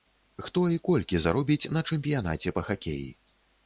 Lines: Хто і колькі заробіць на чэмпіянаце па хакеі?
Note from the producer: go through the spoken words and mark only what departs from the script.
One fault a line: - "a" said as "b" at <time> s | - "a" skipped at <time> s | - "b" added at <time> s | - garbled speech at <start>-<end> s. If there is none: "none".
none